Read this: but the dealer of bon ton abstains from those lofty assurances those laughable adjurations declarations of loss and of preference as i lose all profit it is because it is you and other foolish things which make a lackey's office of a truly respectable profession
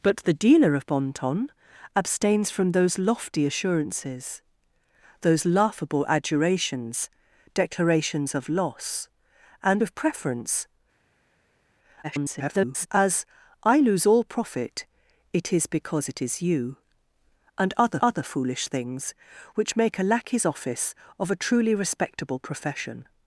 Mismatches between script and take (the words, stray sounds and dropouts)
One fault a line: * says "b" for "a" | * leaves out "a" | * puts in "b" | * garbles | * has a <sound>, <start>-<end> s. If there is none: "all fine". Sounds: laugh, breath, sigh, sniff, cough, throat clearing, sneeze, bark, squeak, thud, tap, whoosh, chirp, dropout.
* garbles
* puts in "other"